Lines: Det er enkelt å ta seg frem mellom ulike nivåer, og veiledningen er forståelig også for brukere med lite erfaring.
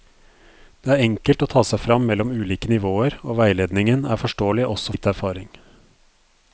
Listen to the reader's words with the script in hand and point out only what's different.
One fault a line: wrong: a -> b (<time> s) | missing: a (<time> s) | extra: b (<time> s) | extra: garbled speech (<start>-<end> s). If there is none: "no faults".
missing: for brukere med (5.0 s)